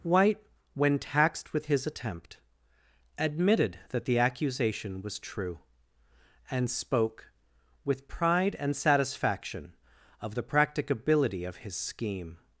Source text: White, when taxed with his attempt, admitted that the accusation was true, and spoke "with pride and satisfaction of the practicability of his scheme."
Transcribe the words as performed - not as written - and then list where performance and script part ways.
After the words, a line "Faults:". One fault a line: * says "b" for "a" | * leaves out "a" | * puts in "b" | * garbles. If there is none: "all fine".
White, when taxed with his attempt, admitted that the accusation was true, and spoke "with pride and satisfaction of the practicability of his scheme."
Faults:
all fine